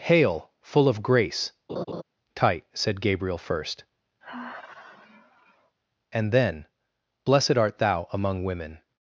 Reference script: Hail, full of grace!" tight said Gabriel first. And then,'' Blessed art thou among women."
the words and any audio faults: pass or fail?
fail